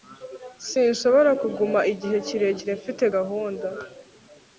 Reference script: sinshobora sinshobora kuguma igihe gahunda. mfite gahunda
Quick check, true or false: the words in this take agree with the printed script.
false